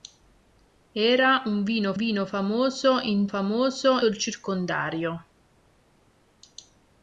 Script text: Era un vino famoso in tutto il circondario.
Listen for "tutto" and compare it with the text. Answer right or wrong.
wrong